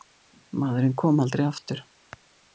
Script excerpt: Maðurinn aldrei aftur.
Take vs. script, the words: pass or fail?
fail